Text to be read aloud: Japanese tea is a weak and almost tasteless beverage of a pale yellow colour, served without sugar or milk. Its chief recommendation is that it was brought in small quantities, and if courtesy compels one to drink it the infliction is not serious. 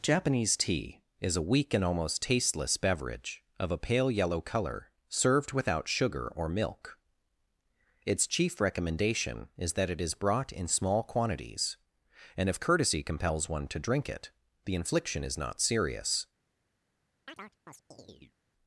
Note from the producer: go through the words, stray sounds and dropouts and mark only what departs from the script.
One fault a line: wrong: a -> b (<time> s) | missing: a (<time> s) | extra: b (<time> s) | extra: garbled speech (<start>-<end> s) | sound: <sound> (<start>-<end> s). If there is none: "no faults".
wrong: was -> is (10.0 s)
sound: chirp (17.3-18.4 s)